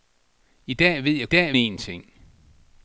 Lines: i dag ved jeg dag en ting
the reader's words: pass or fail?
pass